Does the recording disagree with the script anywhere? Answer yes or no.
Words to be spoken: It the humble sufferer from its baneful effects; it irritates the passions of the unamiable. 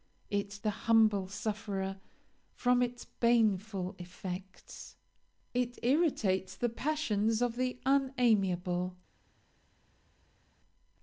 no